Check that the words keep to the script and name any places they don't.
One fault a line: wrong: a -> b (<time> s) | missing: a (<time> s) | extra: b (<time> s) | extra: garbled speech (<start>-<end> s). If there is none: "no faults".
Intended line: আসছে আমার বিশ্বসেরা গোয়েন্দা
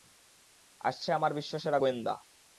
no faults